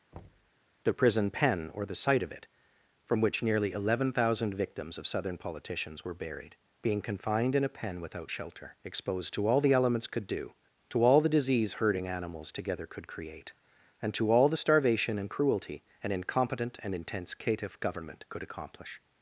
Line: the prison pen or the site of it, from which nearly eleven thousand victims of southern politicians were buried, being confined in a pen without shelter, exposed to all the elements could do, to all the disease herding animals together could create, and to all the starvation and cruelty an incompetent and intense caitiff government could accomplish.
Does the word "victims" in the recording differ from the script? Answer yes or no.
no